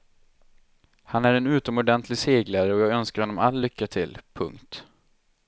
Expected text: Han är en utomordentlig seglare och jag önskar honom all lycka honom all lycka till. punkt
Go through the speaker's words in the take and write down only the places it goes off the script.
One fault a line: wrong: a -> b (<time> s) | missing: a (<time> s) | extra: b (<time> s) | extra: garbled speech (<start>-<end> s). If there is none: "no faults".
missing: honom all lycka (3.9 s)